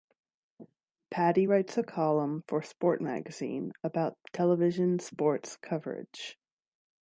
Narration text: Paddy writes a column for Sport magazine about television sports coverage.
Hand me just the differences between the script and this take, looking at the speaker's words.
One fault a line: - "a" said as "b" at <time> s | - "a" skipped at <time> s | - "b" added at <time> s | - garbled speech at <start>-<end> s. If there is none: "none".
none